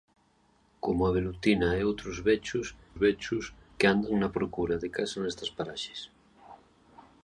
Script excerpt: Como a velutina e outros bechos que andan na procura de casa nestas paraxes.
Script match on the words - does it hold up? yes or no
no